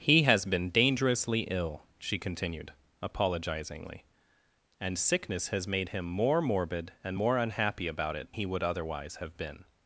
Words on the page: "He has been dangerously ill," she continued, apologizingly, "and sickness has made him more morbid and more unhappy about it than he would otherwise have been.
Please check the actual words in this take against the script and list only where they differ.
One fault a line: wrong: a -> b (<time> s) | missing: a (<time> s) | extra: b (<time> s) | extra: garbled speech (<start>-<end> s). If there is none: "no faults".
missing: than (8.3 s)